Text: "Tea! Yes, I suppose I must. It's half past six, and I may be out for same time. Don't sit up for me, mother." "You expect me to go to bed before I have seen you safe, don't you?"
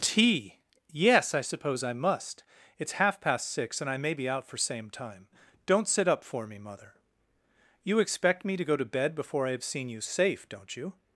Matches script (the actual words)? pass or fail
pass